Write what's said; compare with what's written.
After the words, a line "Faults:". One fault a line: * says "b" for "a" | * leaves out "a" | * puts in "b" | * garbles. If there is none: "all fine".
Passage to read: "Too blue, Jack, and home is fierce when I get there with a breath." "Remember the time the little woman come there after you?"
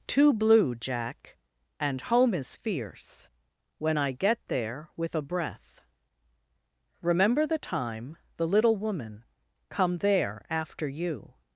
"Too blue, Jack, and home is fierce when I get there with a breath." "Remember the time the little woman come there after you?"
Faults:
all fine